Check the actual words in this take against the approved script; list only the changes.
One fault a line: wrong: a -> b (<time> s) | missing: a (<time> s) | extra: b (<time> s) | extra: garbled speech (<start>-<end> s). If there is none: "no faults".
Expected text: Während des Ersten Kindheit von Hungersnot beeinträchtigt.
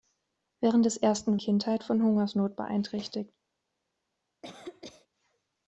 no faults